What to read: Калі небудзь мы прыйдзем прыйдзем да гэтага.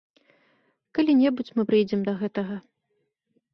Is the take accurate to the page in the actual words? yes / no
no